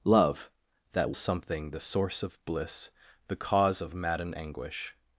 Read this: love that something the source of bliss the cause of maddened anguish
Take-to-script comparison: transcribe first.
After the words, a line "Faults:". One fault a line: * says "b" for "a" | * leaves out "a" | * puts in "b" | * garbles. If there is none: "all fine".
love that something the source of bliss the cause of maddened anguish
Faults:
all fine